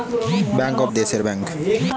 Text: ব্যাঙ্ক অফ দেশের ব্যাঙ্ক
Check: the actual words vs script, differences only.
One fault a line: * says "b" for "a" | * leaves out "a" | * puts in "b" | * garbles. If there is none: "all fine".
all fine